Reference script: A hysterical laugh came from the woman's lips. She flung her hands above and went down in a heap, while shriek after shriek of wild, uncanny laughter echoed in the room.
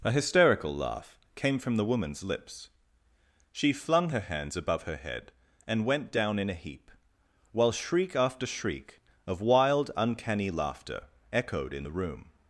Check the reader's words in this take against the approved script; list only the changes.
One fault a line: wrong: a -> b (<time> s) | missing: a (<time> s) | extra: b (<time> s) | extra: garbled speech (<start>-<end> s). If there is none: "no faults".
extra: her head (4.8 s)